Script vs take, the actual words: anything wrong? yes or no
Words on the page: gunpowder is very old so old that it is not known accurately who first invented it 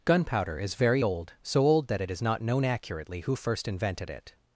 no